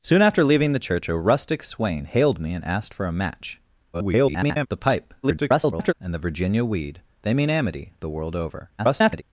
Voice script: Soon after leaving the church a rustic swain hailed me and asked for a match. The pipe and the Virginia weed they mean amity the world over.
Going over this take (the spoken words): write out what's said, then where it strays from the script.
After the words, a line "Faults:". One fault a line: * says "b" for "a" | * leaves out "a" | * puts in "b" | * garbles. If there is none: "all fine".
Soon after leaving the church a rustic swain hailed me and asked for a match. [garbled] The pipe [garbled] and the Virginia weed they mean amity the world over. [garbled]
Faults:
* garbles
* garbles
* garbles